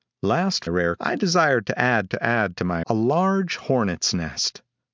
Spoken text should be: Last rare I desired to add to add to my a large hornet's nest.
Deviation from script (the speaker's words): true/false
false